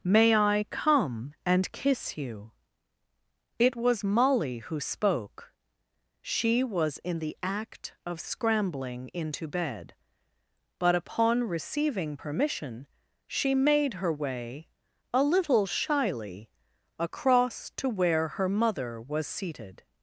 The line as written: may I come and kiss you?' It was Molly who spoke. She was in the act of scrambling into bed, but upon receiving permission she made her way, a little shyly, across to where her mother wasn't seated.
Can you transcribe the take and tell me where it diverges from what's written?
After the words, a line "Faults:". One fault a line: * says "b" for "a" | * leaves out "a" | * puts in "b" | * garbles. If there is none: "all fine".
may I come and kiss you?' It was Molly who spoke. She was in the act of scrambling into bed, but upon receiving permission she made her way, a little shyly, across to where her mother was seated.
Faults:
* says "was" for "wasn't"